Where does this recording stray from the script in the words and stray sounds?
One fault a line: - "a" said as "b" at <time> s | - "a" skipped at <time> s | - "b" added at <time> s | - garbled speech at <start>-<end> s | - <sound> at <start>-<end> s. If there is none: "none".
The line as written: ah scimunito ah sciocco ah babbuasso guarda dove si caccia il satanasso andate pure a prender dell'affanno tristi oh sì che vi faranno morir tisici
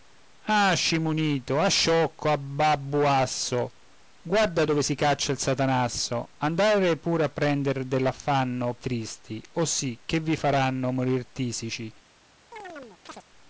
- chirp at 12.5-13.2 s